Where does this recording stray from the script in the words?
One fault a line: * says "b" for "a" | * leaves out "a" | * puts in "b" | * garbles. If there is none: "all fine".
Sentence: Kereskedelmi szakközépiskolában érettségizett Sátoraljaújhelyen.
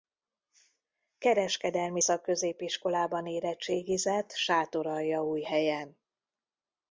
all fine